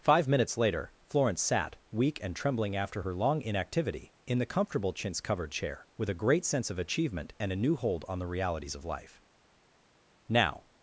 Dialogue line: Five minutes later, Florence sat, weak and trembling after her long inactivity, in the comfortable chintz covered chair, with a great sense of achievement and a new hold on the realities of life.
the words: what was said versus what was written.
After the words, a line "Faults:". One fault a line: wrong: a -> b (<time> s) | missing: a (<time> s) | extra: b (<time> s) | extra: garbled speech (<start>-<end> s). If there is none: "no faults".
Five minutes later, Florence sat, weak and trembling after her long inactivity, in the comfortable chintz covered chair, with a great sense of achievement and a new hold on the realities of life. "Now
Faults:
extra: Now (10.3 s)